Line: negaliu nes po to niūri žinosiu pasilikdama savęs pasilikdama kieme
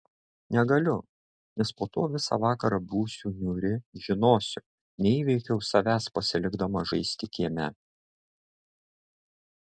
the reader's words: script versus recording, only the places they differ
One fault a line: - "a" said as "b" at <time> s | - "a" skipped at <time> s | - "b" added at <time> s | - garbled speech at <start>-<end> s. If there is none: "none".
- "visą vakarą būsiu" added at 2.1 s
- "pasilikdama" said as "neįveikiau" at 5.1 s
- "žaisti" added at 6.9 s